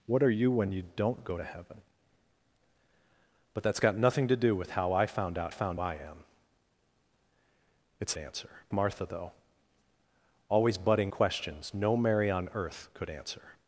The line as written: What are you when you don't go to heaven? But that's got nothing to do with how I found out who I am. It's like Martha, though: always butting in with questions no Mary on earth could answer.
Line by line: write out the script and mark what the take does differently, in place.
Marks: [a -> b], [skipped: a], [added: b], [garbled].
What are you when you don't go to heaven? But that's got nothing to do with how I found out [who -> found] I am. It's [like -> answer] Martha, though: always butting [skipped: in with] questions no Mary on earth could answer.